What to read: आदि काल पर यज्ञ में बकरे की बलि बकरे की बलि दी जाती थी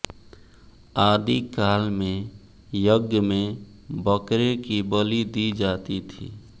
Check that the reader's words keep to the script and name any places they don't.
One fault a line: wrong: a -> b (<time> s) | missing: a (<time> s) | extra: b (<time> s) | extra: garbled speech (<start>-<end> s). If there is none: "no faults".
wrong: पर -> में (1.9 s)
missing: बकरे की बलि (5.2 s)